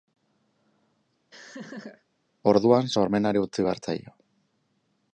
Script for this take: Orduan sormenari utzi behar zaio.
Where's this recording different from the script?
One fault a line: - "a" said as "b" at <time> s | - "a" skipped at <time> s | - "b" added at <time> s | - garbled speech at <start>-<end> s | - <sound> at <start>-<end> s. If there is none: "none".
- laugh at 1.3-2.0 s